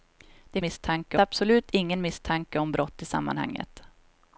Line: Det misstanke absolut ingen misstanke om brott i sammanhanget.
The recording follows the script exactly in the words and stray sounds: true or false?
true